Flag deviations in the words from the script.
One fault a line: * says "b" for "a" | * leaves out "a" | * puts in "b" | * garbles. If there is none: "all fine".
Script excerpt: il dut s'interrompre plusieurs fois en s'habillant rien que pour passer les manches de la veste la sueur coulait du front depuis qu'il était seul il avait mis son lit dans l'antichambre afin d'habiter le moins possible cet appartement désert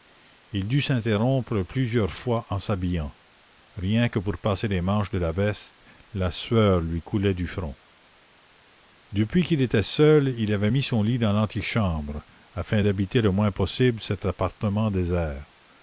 * puts in "lui"